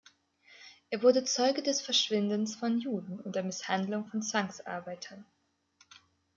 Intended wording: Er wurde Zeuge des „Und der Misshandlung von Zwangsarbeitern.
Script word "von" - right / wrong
right